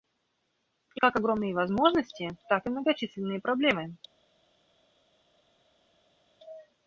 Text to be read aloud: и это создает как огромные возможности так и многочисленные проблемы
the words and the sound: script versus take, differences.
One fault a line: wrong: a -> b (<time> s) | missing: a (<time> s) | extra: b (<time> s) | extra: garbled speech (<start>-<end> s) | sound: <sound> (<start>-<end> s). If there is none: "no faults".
missing: это создает (1.0 s)